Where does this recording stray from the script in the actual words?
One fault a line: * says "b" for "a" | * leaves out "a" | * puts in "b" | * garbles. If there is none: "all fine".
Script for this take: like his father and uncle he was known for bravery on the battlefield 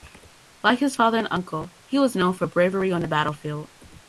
all fine